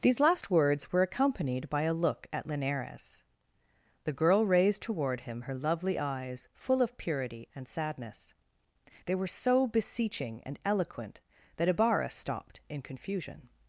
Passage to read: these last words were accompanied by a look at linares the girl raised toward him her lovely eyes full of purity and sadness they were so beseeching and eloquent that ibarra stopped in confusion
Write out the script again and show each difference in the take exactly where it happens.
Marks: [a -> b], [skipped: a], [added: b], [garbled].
these last words were accompanied by a look at linares the girl raised toward him her lovely eyes full of purity and sadness they were so beseeching and eloquent that ibarra stopped in confusion